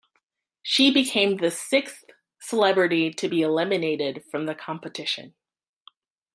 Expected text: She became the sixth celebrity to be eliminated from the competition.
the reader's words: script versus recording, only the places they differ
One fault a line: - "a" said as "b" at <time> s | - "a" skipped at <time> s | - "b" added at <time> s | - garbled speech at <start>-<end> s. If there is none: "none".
none